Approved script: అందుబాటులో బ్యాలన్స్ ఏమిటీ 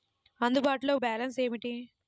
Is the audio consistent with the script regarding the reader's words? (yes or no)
yes